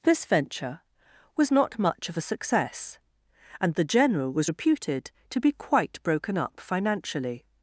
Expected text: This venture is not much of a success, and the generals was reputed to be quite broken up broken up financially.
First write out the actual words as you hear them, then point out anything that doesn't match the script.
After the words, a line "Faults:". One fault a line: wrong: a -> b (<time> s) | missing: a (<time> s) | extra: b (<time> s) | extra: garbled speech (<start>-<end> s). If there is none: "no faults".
This venture was not much of a success, and the general was reputed to be quite broken up financially.
Faults:
wrong: is -> was (1.4 s)
wrong: generals -> general (3.8 s)
missing: broken up (6.6 s)